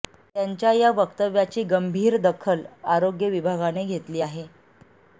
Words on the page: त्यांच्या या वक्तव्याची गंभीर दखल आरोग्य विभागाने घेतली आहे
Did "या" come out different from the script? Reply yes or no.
no